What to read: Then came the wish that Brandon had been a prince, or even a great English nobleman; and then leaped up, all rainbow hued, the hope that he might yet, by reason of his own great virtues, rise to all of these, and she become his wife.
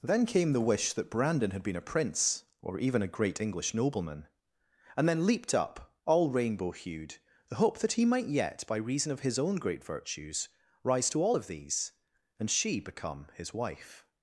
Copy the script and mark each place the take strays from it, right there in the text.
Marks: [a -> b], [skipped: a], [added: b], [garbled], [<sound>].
Then came the wish that Brandon had been a prince, or even a great English nobleman; and then leaped up, all rainbow hued, the hope that he might yet, by reason of his own great virtues, rise to all of these, and she become his wife.